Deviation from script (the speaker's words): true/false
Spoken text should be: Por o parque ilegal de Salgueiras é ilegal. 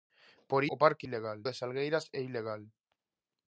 false